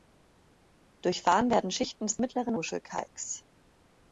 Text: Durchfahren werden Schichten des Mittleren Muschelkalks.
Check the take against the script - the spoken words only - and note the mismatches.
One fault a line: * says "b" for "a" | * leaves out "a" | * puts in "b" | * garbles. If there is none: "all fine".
all fine